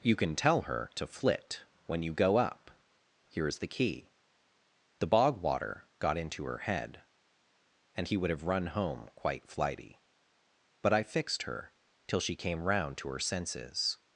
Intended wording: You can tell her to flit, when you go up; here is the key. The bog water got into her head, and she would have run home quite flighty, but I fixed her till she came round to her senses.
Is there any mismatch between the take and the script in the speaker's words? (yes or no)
yes